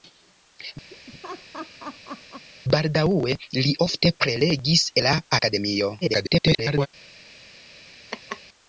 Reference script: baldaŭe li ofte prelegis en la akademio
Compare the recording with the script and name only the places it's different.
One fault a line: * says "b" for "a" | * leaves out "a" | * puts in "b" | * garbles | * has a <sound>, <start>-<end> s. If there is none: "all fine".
* has a laugh, 0.9-2.5 s
* leaves out "en"
* garbles
* has a laugh, 8.1-8.4 s